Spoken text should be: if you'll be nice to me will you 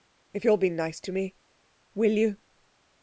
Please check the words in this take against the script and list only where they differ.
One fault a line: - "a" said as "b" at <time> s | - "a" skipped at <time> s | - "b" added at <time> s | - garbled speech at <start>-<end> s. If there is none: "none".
none